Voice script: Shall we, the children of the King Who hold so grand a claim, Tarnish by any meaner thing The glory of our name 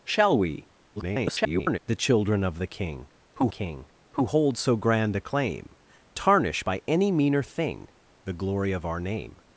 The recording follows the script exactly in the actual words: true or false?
false